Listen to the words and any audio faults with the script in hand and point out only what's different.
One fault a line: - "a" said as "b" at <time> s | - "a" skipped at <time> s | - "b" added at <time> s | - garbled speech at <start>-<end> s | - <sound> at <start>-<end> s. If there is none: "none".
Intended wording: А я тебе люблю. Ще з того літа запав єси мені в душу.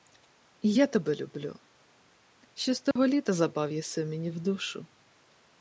- "А" said as "І" at 0.6 s
- dropout at 2.9-3.0 s